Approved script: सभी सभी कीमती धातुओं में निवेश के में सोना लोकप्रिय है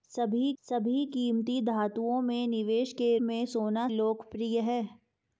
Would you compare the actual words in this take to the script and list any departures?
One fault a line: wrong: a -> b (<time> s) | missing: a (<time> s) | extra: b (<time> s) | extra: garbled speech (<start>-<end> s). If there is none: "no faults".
no faults